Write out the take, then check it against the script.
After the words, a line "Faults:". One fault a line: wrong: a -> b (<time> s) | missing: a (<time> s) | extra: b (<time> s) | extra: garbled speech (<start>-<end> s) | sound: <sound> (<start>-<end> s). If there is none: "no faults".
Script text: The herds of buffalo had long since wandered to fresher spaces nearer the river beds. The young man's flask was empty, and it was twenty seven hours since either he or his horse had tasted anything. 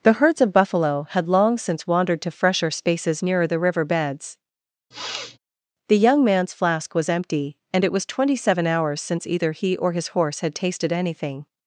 The herds of buffalo had long since wandered to fresher spaces nearer the river beds. The young man's flask was empty, and it was twenty seven hours since either he or his horse had tasted anything.
Faults:
sound: sniff (4.9-5.4 s)